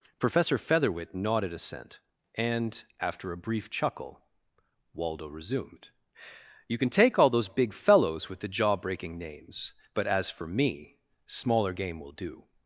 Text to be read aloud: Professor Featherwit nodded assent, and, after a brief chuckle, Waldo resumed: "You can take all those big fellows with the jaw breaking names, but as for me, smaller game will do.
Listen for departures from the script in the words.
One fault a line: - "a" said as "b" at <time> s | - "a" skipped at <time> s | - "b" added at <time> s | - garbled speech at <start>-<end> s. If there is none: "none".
none